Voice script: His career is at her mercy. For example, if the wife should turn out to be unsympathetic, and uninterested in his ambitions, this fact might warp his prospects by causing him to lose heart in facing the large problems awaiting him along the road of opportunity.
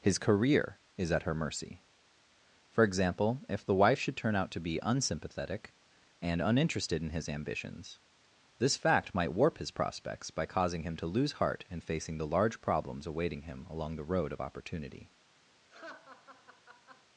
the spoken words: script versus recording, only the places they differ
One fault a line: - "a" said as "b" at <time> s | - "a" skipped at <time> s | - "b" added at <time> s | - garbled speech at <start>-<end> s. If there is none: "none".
none